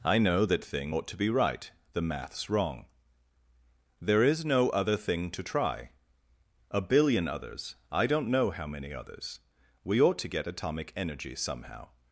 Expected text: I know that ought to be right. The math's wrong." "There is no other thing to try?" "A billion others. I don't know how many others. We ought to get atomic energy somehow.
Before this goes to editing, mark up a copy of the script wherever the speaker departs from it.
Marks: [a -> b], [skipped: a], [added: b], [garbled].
I know that [added: thing] ought to be right. The math's wrong." "There is no other thing to try?" "A billion others. I don't know how many others. We ought to get atomic energy somehow.